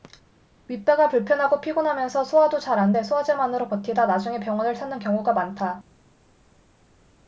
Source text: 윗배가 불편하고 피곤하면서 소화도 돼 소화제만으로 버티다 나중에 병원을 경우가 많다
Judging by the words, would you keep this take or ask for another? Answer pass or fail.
fail